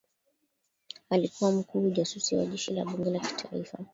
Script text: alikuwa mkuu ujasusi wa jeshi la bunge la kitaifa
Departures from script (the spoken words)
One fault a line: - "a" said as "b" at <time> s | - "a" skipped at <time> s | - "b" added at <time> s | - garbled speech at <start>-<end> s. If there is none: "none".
none